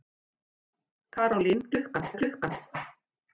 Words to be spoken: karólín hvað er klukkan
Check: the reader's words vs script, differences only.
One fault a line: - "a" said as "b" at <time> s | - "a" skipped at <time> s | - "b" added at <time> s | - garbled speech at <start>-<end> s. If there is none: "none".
- "hvað" said as "klukkan" at 1.7 s